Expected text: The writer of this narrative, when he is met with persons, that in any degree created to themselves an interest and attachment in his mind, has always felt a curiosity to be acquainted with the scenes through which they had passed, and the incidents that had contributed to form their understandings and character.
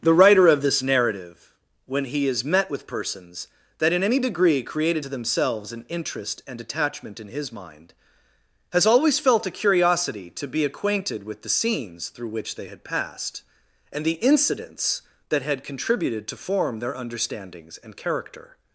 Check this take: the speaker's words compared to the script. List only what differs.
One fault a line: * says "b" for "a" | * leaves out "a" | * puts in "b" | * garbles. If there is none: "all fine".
all fine